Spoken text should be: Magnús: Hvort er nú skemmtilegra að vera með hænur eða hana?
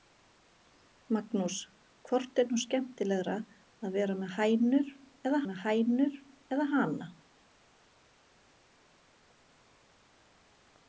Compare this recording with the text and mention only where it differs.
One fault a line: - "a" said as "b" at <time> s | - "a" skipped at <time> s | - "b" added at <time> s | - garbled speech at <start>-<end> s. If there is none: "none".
- "með hænur eða" added at 5.5 s